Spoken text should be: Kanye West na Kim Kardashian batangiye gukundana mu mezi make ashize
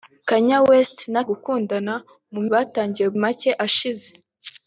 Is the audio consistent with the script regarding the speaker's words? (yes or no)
no